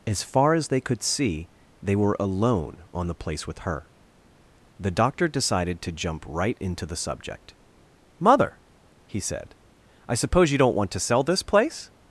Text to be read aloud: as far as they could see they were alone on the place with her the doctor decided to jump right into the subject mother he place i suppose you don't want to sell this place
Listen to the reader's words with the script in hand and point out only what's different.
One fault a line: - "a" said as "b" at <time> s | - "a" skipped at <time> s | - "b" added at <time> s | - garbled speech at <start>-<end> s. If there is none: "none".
- "place" said as "said" at 9.2 s